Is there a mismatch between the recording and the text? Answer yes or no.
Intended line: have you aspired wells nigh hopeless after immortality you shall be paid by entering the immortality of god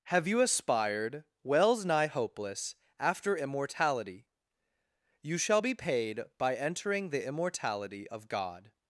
no